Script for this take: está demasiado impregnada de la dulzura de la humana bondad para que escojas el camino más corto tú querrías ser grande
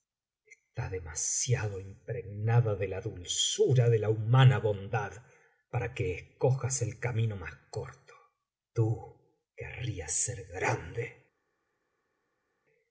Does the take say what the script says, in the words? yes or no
yes